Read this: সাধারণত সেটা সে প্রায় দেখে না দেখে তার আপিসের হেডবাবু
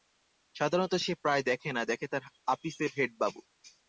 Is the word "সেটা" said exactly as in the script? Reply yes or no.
no